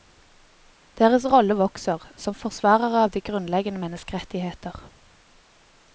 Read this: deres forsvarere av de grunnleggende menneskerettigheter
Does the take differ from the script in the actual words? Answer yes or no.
yes